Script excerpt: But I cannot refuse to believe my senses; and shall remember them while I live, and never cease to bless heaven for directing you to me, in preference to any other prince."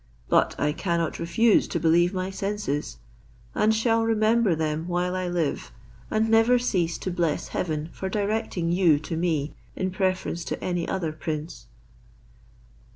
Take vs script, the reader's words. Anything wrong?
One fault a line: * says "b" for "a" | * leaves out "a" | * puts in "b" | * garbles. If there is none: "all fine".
all fine